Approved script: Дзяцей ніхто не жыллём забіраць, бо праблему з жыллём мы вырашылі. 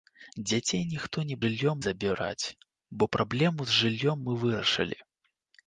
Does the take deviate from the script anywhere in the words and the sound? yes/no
no